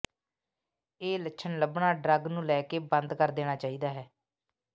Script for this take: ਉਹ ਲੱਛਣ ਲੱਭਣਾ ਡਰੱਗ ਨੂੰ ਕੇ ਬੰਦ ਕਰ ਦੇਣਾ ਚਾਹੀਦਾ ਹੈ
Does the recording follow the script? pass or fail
fail